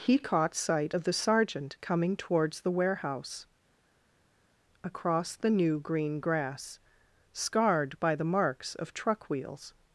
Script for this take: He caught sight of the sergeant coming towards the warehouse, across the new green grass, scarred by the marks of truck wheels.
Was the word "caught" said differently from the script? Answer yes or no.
no